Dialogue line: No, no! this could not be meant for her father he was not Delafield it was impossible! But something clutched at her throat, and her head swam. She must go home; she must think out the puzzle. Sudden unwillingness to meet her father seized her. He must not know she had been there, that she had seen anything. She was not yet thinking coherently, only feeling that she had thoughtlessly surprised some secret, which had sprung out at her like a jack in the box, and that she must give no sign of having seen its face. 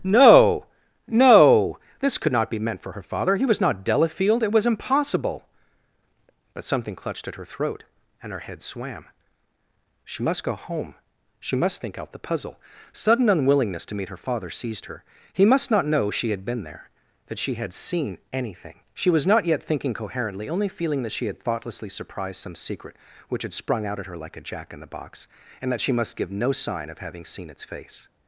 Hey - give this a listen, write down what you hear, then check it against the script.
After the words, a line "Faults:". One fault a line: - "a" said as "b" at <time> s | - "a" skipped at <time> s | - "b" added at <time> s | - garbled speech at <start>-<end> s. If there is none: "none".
No, no! this could not be meant for her father he was not Delafield it was impossible! But something clutched at her throat, and her head swam. She must go home; she must think out the puzzle. Sudden unwillingness to meet her father seized her. He must not know she had been there, that she had seen anything. She was not yet thinking coherently, only feeling that she had thoughtlessly surprised some secret, which had sprung out at her like a jack in the box, and that she must give no sign of having seen its face.
Faults:
none